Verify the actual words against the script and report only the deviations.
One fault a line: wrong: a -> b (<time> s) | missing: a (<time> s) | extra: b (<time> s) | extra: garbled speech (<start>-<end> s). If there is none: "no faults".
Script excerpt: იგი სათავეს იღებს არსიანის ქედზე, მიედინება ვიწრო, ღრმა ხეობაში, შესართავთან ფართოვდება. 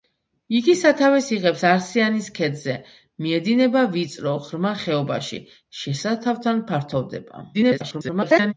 extra: garbled speech (7.5-8.5 s)